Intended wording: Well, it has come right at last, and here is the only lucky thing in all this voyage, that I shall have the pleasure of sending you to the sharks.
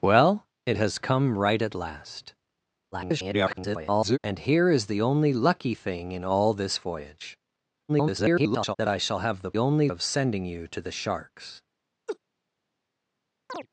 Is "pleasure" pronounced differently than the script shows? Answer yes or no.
yes